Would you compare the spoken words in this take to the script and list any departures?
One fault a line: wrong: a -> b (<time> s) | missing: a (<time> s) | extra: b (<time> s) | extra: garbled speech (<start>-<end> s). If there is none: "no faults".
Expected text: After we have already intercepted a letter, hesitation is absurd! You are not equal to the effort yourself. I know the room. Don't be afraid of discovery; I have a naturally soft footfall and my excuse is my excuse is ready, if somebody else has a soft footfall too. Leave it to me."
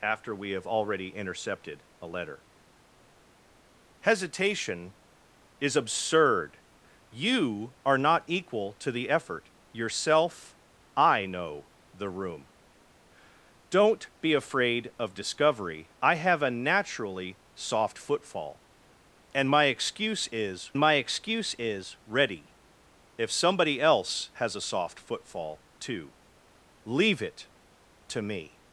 no faults